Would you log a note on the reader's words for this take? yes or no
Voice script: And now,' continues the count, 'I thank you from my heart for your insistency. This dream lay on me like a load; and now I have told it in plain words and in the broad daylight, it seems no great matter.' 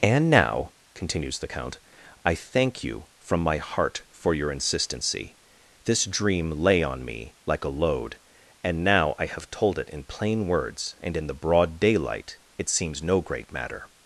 no